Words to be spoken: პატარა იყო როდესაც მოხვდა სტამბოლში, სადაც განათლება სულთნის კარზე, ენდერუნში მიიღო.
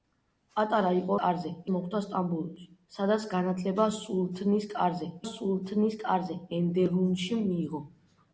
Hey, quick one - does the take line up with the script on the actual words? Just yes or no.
no